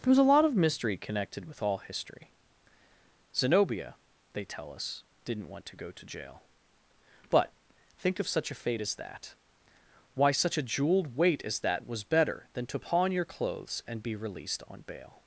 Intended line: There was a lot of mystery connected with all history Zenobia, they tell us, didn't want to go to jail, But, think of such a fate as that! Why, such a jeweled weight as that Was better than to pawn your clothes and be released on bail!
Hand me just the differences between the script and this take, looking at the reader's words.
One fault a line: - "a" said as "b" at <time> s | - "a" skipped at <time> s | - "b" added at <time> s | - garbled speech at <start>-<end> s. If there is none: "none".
none